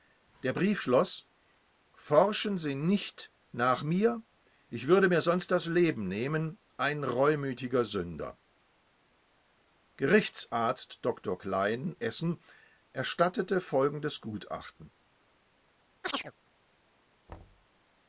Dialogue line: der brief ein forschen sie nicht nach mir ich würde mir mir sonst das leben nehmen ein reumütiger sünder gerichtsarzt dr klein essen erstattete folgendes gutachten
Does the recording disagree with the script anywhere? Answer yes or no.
yes